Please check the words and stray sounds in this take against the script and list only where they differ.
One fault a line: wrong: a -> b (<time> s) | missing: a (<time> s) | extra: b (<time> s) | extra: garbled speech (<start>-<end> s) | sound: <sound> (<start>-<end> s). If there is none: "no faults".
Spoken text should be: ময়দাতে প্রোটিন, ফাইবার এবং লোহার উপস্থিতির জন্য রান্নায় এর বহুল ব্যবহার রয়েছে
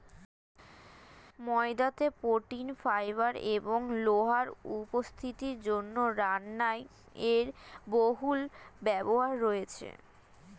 no faults